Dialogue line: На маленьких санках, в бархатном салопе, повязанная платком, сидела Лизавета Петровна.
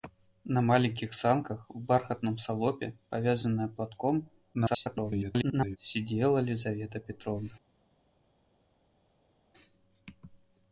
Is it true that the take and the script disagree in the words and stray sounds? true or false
true